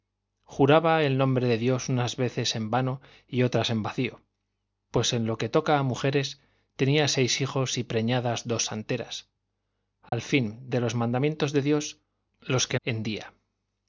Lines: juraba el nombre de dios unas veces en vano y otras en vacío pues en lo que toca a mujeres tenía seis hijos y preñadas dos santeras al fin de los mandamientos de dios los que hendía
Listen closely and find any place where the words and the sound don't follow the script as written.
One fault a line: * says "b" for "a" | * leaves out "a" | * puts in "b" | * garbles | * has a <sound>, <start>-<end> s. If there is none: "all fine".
* has a dropout, 10.1-10.1 s